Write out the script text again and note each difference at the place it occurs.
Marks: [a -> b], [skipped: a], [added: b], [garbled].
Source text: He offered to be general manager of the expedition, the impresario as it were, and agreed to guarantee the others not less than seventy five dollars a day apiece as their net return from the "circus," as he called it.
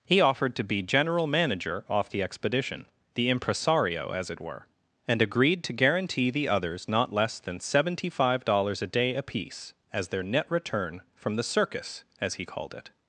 He offered to be general manager [of -> off] the expedition, the impresario as it were, and agreed to guarantee the others not less than seventy five dollars a day apiece as their net return from the "circus," as he called it.